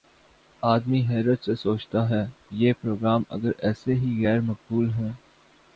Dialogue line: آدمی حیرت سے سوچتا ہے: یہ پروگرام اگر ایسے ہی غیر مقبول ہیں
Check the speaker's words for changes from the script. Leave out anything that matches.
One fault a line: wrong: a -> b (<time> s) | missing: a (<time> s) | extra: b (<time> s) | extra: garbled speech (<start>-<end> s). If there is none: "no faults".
no faults